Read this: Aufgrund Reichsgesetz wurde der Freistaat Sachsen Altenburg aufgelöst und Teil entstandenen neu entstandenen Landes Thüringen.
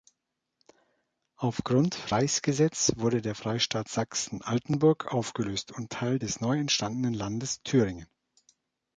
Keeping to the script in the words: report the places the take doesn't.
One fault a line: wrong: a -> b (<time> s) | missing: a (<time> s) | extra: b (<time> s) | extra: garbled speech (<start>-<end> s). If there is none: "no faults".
wrong: entstandenen -> des (6.2 s)